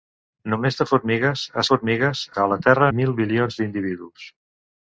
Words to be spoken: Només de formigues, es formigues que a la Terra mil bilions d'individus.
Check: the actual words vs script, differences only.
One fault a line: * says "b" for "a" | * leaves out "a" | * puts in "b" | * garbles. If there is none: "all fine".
all fine